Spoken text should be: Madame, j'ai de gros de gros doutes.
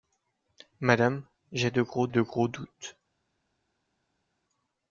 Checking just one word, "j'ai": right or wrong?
right